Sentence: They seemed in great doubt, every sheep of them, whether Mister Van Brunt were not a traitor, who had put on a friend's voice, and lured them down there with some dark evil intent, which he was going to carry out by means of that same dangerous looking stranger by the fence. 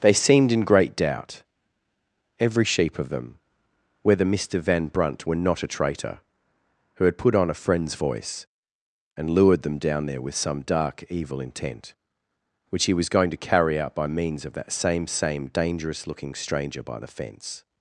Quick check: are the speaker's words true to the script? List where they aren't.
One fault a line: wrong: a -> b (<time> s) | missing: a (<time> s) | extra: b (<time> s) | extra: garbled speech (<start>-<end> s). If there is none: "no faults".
extra: same (15.1 s)